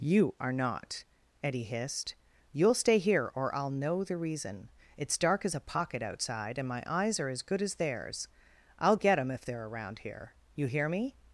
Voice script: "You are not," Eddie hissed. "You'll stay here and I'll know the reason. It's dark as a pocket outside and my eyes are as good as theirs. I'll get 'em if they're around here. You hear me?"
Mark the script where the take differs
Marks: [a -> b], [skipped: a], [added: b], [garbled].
"You are not," Eddie hissed. "You'll stay here [and -> or] I'll know the reason. It's dark as a pocket outside and my eyes are as good as theirs. I'll get 'em if they're around here. You hear me?"